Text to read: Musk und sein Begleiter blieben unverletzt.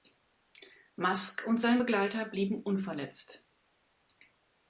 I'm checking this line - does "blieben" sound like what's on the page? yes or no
yes